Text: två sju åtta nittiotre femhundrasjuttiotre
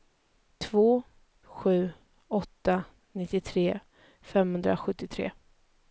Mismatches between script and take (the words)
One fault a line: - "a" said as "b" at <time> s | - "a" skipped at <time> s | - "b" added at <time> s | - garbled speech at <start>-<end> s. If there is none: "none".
none